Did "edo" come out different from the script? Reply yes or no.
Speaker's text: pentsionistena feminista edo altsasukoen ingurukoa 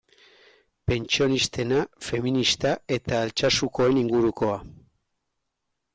yes